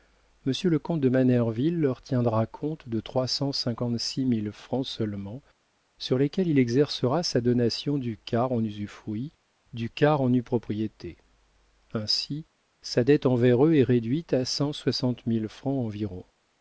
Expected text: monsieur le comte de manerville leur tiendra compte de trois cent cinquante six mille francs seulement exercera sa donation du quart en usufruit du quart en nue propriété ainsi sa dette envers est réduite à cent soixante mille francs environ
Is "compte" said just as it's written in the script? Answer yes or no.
yes